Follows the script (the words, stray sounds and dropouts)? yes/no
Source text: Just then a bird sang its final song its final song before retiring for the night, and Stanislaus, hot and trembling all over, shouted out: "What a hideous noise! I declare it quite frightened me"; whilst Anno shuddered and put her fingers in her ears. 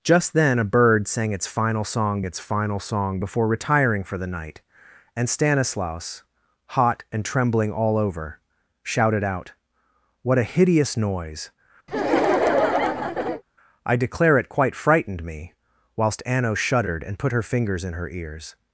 no